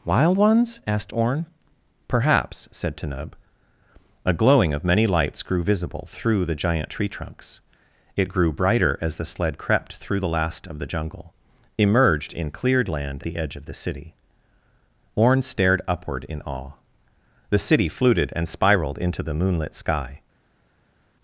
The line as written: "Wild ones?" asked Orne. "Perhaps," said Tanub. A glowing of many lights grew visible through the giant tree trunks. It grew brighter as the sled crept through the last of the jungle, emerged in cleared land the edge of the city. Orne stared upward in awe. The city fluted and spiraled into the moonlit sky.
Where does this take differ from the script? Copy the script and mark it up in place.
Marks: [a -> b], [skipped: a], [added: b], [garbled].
"Wild ones?" asked Orne. "Perhaps," said Tanub. A glowing of many lights grew visible through the giant tree trunks. It grew brighter as the sled crept through the last of the jungle, emerged in cleared land the edge of the city. Orne stared upward in awe. The city fluted and spiraled into the moonlit sky.